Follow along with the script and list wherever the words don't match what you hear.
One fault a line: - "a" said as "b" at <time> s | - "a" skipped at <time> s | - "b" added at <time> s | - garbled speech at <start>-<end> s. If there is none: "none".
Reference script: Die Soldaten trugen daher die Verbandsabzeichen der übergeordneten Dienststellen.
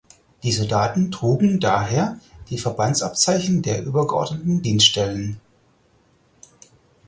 none